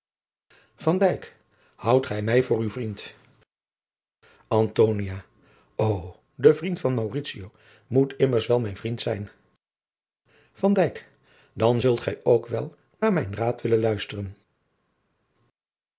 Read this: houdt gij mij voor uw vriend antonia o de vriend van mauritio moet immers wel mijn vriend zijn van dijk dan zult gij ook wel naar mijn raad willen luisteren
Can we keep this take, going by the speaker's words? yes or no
yes